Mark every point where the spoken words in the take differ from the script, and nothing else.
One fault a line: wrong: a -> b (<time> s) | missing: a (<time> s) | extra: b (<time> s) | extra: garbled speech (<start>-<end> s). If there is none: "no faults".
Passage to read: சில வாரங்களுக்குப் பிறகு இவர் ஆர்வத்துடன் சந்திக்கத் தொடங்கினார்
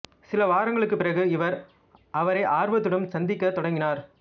extra: அவரை (2.1 s)